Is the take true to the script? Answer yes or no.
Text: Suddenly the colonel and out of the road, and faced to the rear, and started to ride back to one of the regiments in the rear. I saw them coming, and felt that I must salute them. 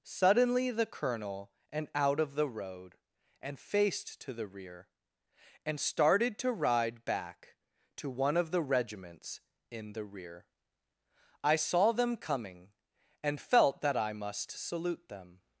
yes